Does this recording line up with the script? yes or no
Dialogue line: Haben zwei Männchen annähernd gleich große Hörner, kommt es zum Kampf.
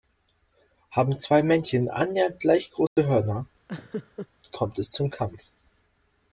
yes